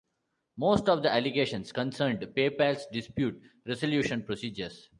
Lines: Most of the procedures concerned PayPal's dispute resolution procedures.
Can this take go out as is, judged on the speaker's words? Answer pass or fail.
fail